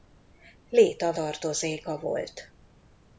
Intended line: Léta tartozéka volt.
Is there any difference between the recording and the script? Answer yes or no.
no